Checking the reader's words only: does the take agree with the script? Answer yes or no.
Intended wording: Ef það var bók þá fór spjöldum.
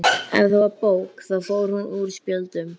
no